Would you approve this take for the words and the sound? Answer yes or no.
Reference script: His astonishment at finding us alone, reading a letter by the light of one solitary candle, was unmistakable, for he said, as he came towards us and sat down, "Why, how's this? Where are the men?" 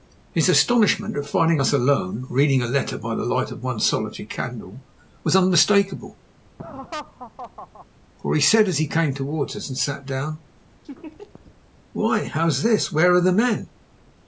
no